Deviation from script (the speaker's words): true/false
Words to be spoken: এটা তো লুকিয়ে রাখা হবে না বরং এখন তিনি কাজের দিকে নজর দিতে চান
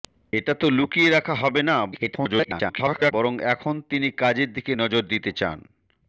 true